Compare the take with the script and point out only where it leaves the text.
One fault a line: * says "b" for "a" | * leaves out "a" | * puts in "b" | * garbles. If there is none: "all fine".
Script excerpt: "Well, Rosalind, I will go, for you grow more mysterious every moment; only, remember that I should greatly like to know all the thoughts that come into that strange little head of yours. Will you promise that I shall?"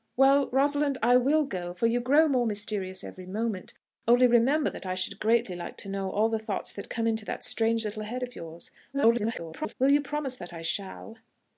* garbles